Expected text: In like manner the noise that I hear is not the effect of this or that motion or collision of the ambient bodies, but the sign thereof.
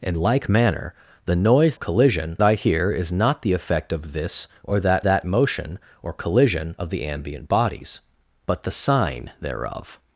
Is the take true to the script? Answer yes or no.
no